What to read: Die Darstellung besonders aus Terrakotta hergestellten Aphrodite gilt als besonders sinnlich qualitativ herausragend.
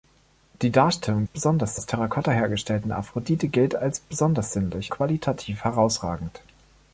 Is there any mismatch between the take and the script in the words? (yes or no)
no